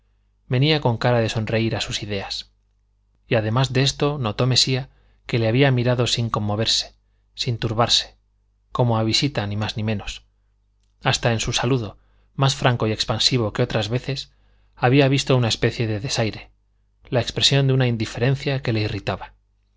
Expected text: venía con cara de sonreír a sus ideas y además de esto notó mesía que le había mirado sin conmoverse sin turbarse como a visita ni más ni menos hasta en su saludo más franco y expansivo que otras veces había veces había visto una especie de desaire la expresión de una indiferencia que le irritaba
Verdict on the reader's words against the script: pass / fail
fail